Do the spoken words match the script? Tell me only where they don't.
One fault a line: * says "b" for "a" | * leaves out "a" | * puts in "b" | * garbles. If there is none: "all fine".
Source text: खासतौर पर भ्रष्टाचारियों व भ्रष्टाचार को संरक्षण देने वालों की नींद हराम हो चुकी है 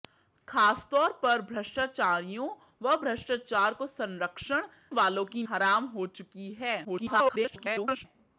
* leaves out "देने"
* leaves out "नींद"
* garbles